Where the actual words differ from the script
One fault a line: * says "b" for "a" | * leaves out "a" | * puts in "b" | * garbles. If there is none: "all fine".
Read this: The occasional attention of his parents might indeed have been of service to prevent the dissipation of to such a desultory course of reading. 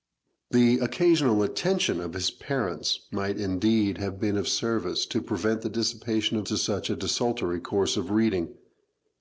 all fine